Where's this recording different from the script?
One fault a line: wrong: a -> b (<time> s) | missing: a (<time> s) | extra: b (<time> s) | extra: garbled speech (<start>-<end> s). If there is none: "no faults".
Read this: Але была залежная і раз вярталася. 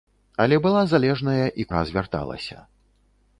no faults